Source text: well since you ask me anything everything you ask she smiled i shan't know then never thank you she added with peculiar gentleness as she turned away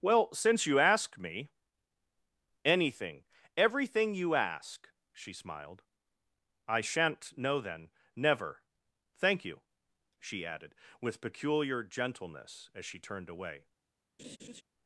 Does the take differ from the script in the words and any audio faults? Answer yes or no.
yes